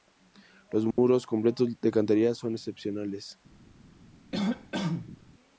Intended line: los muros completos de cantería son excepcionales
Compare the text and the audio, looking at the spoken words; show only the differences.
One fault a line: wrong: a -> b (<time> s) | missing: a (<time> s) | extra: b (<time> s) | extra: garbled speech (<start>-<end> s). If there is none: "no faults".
no faults